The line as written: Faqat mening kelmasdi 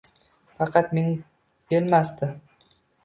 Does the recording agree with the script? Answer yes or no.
yes